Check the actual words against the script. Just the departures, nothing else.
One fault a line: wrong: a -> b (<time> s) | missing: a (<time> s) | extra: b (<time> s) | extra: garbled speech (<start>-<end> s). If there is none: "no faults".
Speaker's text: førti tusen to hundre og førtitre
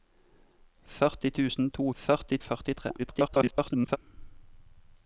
wrong: hundre -> førti (2.0 s)
extra: garbled speech (3.0-4.0 s)